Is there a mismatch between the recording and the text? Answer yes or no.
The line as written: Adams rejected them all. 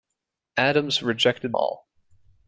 yes